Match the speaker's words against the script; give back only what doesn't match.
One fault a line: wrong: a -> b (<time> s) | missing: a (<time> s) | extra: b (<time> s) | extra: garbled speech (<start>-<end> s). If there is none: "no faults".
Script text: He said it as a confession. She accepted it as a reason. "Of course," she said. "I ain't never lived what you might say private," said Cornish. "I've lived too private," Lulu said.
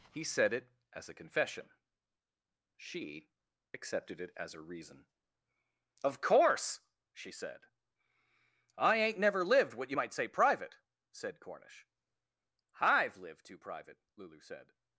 no faults